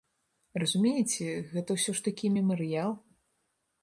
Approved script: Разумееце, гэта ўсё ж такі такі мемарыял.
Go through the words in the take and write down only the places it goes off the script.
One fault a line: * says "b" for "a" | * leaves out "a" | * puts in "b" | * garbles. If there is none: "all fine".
* leaves out "такі"